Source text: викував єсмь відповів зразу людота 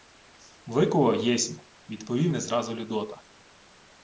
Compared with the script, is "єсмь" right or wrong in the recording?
right